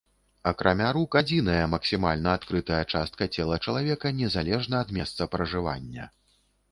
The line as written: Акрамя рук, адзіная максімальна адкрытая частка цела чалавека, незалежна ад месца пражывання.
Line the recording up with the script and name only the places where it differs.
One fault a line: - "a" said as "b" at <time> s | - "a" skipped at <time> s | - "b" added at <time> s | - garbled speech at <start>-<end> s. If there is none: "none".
none